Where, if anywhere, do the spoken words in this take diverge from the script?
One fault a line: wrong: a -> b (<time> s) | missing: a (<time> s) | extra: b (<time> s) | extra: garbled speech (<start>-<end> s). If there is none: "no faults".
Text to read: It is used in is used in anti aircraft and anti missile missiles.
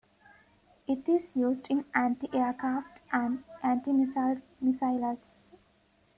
missing: is used in (1.8 s)